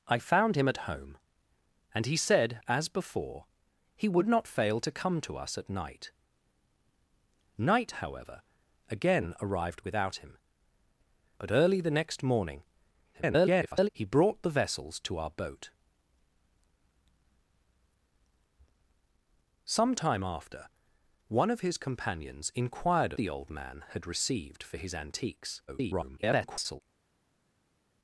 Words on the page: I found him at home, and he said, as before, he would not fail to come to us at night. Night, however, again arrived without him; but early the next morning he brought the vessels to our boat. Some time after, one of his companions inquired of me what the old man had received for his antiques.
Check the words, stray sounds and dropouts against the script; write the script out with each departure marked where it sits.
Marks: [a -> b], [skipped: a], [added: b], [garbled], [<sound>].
I found him at home, and he said, as before, he would not fail to come to us at night. Night, however, again arrived without him; but early the next morning [garbled] he brought the vessels to our boat. Some time after, one of his companions inquired [skipped: of me what] the old man had received for his antiques. [garbled]